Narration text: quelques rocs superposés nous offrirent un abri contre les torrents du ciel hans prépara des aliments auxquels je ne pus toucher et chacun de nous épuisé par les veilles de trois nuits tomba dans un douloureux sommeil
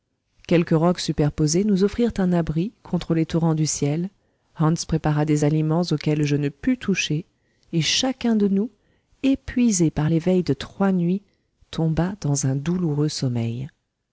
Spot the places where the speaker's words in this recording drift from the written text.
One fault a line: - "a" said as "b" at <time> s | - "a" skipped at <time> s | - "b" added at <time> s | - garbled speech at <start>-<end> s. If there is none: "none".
none